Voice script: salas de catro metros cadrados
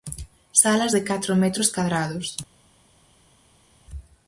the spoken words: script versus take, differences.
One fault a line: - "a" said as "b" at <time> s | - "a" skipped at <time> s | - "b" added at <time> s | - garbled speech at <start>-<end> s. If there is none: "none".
none